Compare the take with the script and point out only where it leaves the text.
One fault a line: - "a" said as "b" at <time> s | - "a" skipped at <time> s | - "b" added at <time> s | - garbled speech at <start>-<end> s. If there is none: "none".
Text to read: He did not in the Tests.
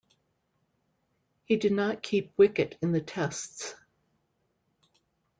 - "keep wicket" added at 2.0 s